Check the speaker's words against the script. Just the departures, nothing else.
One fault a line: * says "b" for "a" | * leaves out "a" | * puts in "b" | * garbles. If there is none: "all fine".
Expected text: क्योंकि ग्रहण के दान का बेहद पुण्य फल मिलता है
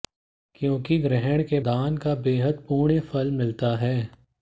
all fine